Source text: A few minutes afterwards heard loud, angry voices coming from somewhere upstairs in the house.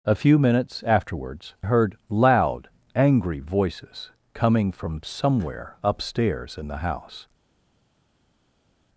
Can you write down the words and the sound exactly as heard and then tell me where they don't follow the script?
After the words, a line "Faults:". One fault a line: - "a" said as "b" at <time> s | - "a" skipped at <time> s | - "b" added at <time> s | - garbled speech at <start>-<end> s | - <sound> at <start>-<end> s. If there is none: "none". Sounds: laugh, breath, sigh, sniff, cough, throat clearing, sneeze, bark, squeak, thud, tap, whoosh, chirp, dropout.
A few minutes afterwards heard loud, angry voices coming from somewhere upstairs in the house.
Faults:
none